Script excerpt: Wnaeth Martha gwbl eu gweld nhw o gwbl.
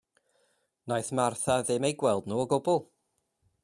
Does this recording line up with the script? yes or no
no